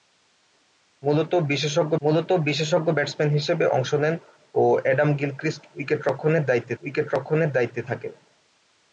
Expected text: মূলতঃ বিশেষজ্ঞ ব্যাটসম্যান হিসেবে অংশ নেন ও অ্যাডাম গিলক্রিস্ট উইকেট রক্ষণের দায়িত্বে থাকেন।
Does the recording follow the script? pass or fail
fail